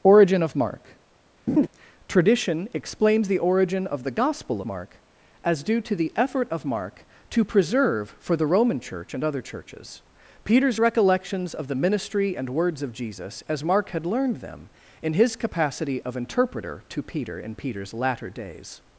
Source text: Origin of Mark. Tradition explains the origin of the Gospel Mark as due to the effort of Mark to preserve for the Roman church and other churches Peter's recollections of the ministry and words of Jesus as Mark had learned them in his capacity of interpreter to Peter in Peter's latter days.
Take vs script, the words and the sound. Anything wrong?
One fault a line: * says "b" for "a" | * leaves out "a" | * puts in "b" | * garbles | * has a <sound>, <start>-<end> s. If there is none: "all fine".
* has a laugh, 1.5-1.7 s